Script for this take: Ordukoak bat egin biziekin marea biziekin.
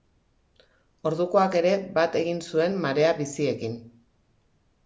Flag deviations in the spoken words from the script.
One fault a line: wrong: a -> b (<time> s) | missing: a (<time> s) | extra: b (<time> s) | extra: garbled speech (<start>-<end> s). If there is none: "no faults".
extra: ere (1.6 s)
wrong: biziekin -> zuen (2.5 s)